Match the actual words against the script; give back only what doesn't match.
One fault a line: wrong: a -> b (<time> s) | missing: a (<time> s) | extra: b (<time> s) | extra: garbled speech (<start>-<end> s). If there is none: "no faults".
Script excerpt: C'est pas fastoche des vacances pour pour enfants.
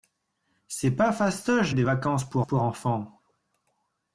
no faults